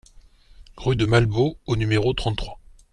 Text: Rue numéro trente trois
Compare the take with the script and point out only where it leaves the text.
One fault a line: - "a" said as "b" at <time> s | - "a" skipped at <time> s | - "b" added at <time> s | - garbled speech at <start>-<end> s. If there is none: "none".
- "de Malbos au" added at 0.9 s